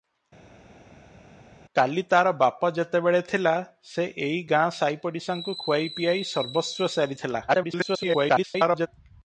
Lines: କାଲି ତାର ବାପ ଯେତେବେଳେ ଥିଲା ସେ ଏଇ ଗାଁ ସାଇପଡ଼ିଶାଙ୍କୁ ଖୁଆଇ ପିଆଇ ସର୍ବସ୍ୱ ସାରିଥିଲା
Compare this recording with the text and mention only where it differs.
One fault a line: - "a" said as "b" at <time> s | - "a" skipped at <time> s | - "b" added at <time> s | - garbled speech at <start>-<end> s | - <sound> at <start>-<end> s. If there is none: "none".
- garbled speech at 7.5-8.9 s